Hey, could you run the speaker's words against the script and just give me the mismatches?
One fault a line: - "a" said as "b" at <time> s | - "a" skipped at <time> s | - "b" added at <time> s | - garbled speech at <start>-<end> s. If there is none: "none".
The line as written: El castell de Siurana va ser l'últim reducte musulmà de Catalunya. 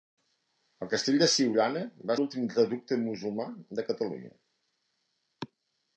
- "ser" skipped at 2.2 s